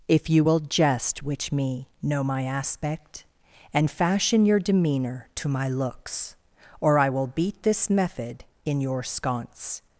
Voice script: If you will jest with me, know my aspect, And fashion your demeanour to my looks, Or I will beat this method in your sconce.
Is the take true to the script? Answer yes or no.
no